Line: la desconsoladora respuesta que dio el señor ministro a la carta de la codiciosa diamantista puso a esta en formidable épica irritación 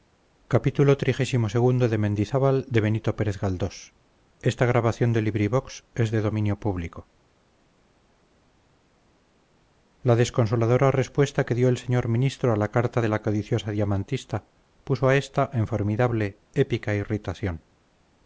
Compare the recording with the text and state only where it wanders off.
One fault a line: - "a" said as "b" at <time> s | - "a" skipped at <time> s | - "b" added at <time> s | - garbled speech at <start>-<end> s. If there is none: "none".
none